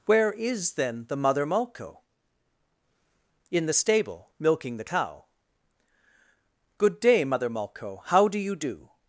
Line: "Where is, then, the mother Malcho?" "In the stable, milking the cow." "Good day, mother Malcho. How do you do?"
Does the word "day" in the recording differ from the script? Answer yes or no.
no